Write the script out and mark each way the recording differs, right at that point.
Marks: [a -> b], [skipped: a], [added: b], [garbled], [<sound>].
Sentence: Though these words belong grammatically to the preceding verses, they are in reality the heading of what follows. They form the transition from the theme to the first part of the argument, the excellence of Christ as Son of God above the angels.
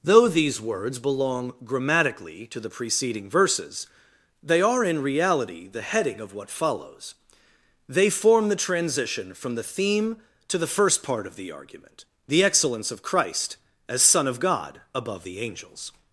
Though these words belong grammatically to the preceding verses, they are in reality the heading of what follows. They form the transition from the theme to the first part of the argument, the excellence of Christ as Son of God above the angels.